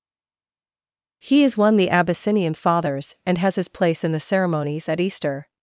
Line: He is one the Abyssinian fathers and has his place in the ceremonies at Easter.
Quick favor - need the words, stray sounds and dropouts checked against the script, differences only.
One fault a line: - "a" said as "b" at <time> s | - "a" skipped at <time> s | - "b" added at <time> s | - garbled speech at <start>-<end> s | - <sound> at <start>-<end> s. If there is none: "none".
none